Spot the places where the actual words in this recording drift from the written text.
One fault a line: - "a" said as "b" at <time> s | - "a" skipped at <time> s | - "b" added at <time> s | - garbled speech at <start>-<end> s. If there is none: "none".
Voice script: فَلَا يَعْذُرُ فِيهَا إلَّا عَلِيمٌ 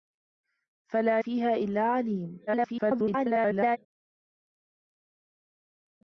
- "يَعْذُرُ" skipped at 1.2 s
- garbled speech at 2.5-3.8 s